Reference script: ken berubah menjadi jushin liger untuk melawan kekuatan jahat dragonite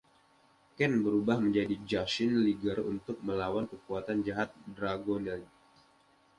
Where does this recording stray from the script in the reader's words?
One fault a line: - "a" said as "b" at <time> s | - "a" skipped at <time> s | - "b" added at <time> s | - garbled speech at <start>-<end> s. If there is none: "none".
none